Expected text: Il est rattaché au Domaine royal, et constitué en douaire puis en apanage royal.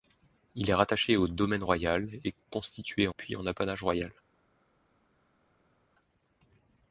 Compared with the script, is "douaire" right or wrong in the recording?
wrong